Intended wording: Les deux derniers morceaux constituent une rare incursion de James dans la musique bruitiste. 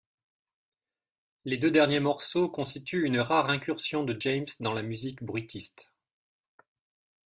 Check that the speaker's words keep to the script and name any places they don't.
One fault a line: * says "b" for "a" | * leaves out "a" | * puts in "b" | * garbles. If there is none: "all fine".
all fine